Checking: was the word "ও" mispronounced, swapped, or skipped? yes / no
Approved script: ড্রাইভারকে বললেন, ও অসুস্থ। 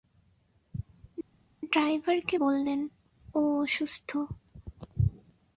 no